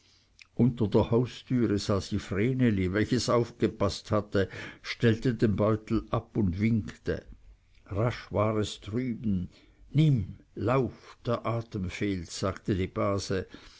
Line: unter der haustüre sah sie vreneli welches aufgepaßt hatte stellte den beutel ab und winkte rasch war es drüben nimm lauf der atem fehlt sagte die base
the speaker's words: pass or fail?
pass